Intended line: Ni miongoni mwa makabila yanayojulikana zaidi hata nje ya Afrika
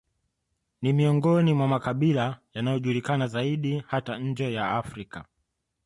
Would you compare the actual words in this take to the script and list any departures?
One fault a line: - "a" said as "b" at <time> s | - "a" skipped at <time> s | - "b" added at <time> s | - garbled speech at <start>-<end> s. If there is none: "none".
none